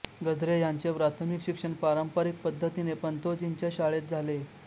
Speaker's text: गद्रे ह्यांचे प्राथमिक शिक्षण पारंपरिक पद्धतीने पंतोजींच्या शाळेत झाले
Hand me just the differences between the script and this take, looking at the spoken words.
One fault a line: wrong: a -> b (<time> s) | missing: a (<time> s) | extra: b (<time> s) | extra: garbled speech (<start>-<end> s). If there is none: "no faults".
no faults